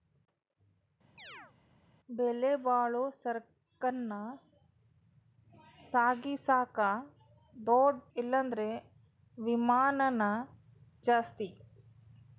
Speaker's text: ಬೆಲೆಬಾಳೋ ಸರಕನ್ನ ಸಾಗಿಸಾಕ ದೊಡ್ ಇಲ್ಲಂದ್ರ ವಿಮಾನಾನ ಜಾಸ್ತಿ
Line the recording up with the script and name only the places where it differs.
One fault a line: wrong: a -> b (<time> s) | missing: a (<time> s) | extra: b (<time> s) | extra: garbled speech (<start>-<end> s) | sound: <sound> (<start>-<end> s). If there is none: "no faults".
sound: chirp (1.2-1.5 s)